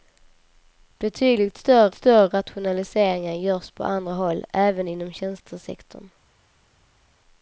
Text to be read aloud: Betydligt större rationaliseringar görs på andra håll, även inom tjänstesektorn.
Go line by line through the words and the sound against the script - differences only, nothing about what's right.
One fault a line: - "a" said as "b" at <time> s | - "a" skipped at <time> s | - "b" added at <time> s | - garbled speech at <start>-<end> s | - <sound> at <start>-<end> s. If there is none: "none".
- "större" added at 1.9 s